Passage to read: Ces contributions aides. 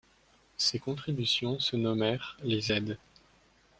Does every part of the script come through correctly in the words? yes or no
no